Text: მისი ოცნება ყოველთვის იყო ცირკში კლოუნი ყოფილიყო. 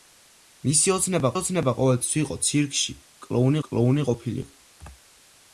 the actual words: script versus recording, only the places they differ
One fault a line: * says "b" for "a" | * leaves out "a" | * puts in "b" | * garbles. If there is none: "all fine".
* puts in "ოცნება"
* puts in "კლოუნი"